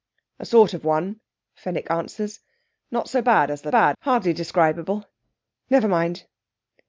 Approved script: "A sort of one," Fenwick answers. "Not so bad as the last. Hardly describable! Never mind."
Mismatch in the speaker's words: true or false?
true